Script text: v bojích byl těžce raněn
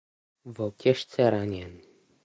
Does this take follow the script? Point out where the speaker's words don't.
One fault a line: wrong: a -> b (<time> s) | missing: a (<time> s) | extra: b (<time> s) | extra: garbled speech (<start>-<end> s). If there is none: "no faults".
missing: bojích byl (0.7 s)